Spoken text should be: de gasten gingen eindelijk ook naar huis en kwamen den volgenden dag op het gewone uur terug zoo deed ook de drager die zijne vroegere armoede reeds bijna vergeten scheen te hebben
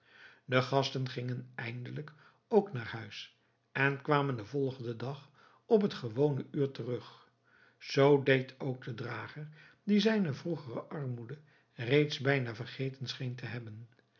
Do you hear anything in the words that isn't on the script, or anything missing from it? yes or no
no